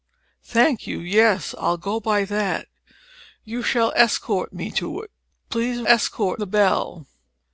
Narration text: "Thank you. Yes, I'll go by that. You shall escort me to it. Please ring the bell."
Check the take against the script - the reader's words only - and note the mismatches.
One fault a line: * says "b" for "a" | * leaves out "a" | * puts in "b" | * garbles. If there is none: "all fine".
* says "escort" for "ring"